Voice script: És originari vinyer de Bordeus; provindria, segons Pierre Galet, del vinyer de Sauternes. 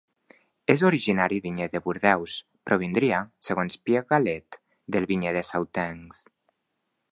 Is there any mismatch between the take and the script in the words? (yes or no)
no